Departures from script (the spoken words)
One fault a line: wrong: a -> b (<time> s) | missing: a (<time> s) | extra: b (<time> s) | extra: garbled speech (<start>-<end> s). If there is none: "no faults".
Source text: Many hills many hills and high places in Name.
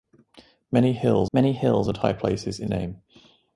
no faults